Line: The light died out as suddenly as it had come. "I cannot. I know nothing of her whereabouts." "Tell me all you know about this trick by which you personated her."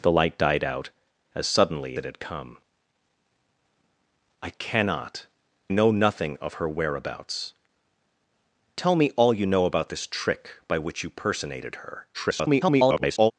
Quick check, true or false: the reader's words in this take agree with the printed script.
false